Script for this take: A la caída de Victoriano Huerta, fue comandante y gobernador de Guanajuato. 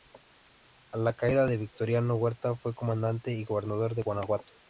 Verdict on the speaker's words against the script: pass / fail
pass